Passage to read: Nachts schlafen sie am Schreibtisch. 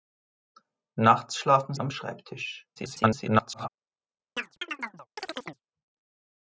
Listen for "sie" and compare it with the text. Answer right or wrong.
wrong